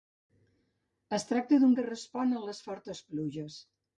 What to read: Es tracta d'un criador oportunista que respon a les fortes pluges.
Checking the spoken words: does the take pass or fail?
fail